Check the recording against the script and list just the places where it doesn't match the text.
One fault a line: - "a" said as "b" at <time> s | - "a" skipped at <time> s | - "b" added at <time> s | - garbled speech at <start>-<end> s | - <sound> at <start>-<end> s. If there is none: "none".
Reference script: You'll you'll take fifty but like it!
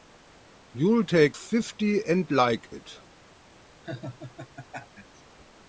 - "you'll" skipped at 1.0 s
- "but" said as "and" at 2.1 s
- laugh at 3.8-5.2 s